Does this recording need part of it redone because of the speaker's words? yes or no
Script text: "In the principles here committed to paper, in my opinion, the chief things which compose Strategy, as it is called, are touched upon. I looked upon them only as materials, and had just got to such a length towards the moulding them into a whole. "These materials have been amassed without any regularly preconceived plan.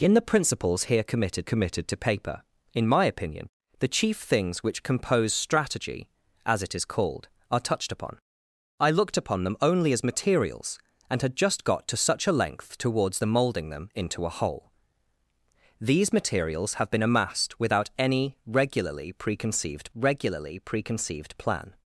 yes